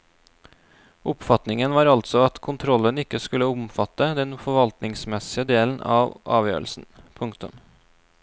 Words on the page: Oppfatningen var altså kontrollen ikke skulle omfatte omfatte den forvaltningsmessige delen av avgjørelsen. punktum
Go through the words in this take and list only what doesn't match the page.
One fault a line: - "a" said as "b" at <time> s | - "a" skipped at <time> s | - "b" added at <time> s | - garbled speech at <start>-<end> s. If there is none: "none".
- "at" added at 2.3 s
- "omfatte" skipped at 4.1 s